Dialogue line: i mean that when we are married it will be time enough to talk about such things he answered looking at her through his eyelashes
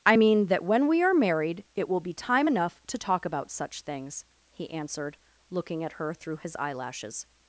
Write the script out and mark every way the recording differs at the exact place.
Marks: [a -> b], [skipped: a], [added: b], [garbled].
i mean that when we are married it will be time enough to talk about such things he answered looking at her through his eyelashes